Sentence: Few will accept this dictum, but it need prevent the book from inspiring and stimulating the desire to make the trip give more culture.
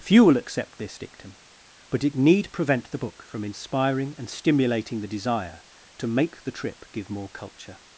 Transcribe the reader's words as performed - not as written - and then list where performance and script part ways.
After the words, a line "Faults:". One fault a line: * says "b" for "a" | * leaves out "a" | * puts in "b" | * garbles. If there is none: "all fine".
Few will accept this dictum, but it need prevent the book from inspiring and stimulating the desire to make the trip give more culture.
Faults:
all fine